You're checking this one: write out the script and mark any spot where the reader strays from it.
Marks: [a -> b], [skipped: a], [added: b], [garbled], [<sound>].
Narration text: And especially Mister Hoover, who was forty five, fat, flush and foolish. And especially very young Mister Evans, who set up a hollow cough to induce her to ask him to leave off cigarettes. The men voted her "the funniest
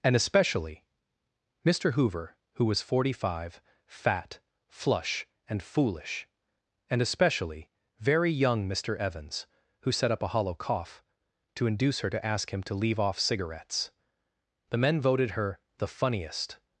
And especially Mister Hoover, who was forty five, fat, flush and foolish. And especially very young Mister Evans, who set up a hollow cough to induce her to ask him to leave off cigarettes. The men voted her "the funniest